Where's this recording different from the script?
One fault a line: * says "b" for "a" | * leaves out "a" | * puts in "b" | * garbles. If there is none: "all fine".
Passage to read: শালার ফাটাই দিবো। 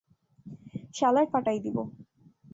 all fine